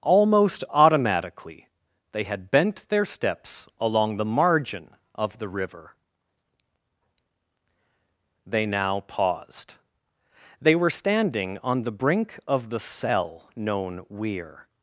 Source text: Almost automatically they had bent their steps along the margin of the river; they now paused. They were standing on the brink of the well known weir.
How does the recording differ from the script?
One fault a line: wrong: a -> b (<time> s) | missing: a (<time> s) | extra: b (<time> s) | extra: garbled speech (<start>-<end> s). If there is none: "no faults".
wrong: well -> cell (12.8 s)